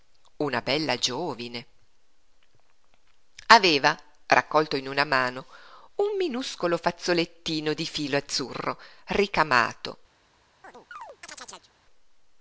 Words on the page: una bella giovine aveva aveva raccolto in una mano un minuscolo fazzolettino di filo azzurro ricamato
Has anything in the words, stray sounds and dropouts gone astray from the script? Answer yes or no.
yes